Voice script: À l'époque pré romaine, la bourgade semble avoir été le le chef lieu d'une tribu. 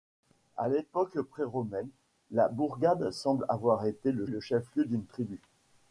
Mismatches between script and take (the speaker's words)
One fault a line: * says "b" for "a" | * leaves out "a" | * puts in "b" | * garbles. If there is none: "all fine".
all fine